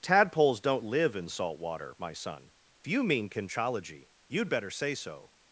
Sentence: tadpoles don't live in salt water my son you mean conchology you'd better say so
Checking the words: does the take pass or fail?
pass